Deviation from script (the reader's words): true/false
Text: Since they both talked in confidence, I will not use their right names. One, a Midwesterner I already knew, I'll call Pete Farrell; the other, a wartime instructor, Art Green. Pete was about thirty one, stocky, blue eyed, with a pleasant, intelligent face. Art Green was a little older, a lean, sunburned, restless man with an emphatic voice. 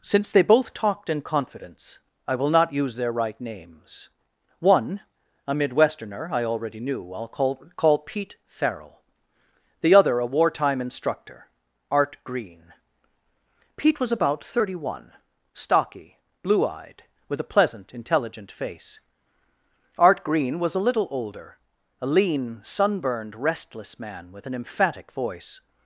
true